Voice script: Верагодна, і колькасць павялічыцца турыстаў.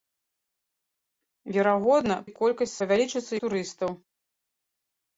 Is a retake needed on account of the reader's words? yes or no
no